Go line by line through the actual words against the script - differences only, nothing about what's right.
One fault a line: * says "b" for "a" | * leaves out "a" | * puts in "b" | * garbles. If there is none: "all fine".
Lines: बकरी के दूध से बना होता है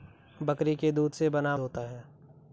all fine